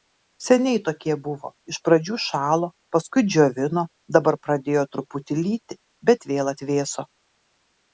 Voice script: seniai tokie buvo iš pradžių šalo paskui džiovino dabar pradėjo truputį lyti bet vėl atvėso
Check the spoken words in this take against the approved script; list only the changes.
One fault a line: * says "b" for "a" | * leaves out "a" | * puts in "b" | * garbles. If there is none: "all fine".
all fine